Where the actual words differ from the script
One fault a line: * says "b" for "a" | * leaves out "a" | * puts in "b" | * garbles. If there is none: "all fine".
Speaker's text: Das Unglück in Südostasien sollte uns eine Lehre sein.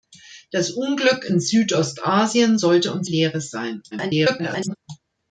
* leaves out "eine"
* garbles